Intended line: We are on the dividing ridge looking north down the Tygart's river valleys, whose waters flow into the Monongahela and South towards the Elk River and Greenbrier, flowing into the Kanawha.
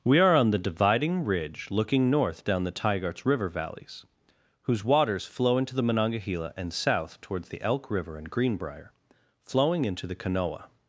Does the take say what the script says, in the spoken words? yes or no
yes